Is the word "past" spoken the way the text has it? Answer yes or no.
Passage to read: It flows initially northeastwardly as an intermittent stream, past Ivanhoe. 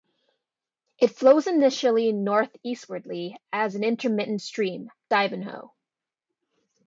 no